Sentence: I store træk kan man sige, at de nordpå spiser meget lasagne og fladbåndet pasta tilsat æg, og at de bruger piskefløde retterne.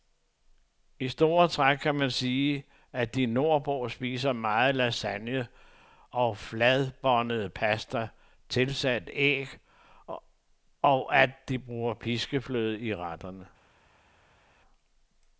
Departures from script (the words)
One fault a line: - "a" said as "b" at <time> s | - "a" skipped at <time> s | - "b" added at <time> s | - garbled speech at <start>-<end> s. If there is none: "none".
- "i" added at 12.8 s